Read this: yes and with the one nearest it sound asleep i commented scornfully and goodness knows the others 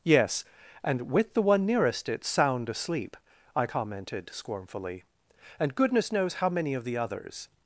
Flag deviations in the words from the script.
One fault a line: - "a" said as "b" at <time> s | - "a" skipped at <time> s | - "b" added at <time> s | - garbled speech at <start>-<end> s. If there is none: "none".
- "how many of" added at 6.3 s